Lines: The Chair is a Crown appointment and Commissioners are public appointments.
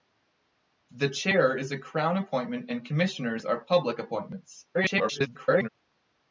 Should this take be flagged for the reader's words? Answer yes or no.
yes